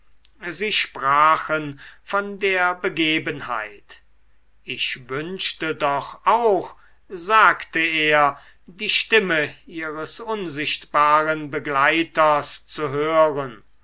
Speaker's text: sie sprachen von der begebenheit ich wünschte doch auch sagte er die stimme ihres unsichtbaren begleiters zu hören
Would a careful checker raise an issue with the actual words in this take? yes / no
no